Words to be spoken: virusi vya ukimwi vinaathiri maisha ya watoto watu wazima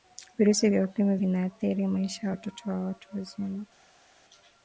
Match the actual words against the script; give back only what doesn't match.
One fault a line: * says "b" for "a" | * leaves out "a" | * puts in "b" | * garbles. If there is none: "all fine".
* puts in "na"